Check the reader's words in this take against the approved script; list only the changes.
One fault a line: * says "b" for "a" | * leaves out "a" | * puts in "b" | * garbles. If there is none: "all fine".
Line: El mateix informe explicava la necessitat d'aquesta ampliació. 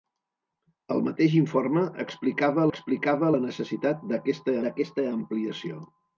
* puts in "explicava"
* puts in "d'aquesta"